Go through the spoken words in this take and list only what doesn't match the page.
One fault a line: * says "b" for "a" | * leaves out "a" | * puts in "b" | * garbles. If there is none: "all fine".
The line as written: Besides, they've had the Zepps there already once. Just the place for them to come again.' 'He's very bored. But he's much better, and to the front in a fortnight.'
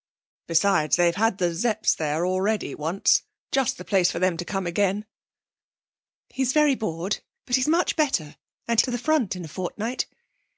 all fine